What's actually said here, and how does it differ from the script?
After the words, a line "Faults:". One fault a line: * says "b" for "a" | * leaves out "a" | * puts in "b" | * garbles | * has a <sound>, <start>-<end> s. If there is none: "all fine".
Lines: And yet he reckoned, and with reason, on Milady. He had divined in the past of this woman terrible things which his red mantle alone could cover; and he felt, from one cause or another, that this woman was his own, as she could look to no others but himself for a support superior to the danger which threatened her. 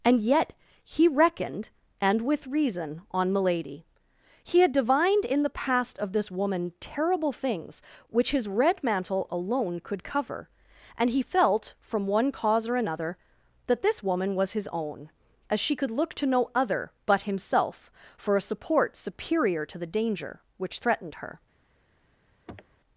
And yet he reckoned, and with reason, on Milady. He had divined in the past of this woman terrible things which his red mantle alone could cover; and he felt, from one cause or another, that this woman was his own, as she could look to no other but himself for a support superior to the danger which threatened her.
Faults:
* says "other" for "others"
* has a sniff, 22.5-22.8 s